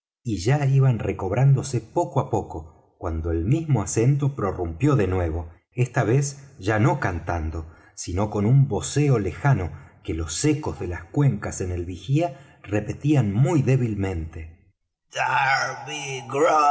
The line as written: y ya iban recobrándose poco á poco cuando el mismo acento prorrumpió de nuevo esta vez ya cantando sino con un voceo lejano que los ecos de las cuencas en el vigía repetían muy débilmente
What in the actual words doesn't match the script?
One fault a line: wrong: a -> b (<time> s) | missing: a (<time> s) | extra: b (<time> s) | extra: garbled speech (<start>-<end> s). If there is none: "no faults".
extra: no (6.8 s)